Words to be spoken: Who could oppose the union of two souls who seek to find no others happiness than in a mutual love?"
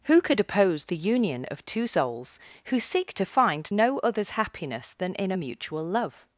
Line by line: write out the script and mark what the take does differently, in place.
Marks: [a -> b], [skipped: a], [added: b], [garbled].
Who could oppose the union of two souls who seek to find no others happiness than in a mutual love?"